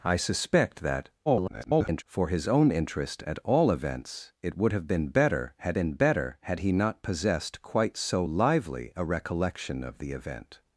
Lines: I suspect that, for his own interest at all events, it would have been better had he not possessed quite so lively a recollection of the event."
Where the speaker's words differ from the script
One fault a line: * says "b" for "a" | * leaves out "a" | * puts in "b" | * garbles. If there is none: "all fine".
* garbles
* puts in "been better had"